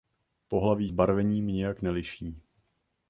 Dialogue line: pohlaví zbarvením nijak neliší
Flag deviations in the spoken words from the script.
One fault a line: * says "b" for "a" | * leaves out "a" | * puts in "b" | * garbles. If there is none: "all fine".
all fine